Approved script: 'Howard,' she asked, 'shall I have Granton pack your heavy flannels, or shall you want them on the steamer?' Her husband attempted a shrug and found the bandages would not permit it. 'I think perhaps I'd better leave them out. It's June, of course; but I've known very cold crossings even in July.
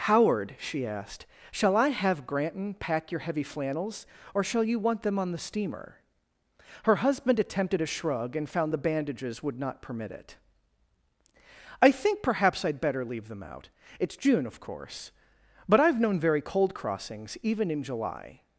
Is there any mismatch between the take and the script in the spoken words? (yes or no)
no